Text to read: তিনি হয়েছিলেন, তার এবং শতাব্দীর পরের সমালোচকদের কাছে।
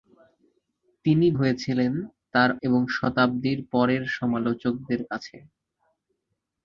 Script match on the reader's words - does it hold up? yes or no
yes